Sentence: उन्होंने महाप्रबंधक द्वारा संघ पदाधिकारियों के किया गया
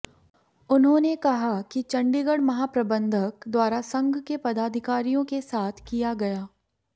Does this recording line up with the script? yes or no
no